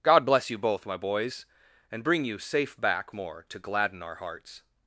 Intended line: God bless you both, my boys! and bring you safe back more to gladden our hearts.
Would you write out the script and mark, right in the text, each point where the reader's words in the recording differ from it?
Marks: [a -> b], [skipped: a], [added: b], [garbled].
God bless you both, my boys! and bring you safe back more to gladden our hearts.